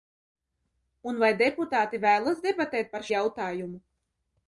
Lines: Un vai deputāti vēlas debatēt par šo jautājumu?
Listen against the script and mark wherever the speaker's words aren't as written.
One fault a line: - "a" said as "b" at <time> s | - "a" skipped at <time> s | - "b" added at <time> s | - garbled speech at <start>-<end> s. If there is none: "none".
- "šo" skipped at 3.0 s